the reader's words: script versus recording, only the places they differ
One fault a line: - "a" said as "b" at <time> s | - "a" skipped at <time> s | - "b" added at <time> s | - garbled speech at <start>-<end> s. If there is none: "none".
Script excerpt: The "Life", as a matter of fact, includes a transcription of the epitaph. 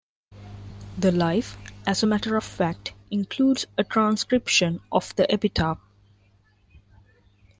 none